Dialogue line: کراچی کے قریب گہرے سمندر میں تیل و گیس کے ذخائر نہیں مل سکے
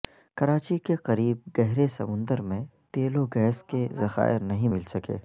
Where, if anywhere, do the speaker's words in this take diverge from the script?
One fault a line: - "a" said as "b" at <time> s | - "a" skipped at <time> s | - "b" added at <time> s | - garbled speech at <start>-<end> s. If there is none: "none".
none